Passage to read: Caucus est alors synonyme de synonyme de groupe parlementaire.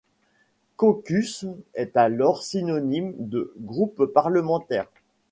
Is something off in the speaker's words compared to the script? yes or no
yes